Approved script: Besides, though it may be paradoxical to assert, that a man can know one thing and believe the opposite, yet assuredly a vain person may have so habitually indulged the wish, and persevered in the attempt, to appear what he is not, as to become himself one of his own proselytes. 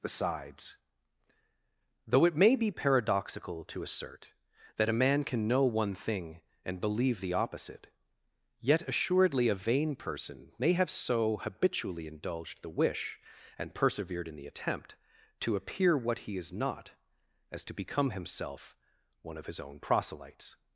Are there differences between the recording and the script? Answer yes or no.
no